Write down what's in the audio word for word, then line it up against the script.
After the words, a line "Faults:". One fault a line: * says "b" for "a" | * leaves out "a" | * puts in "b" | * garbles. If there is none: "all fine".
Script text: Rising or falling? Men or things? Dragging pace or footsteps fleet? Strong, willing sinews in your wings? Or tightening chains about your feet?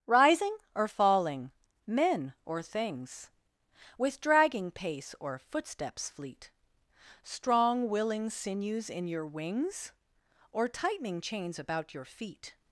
Rising or falling? Men or things? With dragging pace or footsteps fleet? Strong, willing sinews in your wings? Or tightening chains about your feet?
Faults:
* puts in "With"